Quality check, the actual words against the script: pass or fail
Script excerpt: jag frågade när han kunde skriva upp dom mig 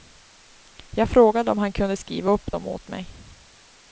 fail